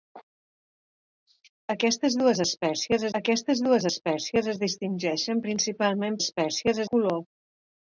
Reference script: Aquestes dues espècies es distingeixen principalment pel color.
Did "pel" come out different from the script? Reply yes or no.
yes